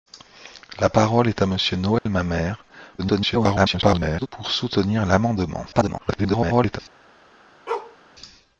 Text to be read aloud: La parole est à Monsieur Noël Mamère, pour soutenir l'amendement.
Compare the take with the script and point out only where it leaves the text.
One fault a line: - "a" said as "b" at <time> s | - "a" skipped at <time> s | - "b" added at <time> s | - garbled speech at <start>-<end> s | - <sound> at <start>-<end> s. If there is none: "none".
- dropout at 2.0-2.1 s
- garbled speech at 3.0-4.3 s
- garbled speech at 5.7-6.8 s
- bark at 7.7-8.0 s